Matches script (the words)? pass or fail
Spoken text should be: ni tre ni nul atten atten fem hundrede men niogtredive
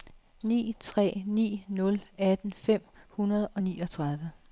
fail